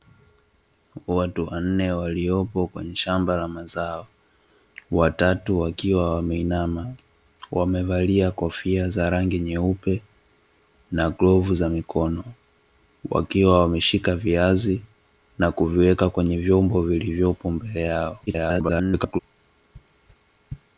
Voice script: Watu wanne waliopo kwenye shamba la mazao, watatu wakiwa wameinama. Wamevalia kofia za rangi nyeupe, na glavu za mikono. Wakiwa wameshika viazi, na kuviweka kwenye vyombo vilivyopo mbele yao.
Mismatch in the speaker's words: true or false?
true